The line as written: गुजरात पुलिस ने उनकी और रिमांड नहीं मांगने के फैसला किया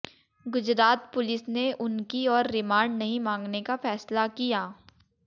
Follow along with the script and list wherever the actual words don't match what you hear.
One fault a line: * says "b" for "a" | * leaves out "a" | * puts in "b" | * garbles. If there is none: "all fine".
* says "का" for "के"